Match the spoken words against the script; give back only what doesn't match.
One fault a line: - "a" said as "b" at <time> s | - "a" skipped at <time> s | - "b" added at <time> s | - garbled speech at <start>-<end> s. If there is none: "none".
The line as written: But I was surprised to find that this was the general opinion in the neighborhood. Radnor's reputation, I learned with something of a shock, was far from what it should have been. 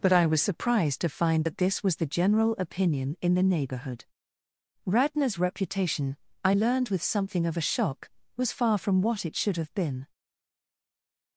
none